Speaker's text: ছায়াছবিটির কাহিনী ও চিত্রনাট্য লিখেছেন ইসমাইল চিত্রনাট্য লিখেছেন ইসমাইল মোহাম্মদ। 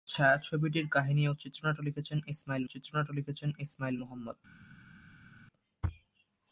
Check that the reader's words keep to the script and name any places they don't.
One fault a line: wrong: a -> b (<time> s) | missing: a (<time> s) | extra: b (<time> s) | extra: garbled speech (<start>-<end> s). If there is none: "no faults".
no faults